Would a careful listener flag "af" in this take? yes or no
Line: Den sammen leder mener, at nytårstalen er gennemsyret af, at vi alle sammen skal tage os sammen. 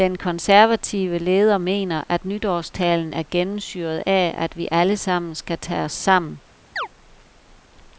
no